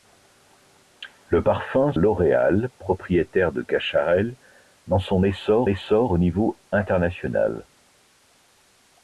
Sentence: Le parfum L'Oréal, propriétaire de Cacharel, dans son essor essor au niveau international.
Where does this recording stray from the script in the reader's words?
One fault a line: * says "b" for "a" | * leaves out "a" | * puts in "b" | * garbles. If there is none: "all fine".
all fine